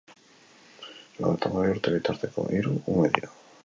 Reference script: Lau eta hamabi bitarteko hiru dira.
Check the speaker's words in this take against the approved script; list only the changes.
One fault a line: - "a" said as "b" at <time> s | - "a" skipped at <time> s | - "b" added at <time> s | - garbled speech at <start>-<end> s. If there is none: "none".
- "urte" added at 1.8 s
- "ume" added at 3.0 s